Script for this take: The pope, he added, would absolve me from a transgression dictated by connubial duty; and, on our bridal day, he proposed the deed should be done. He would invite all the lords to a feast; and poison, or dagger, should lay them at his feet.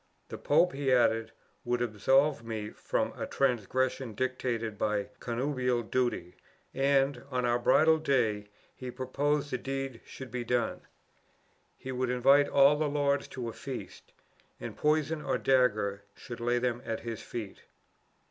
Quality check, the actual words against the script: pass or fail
pass